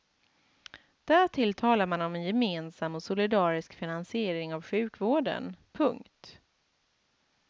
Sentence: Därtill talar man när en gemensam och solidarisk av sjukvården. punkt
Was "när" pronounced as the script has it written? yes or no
no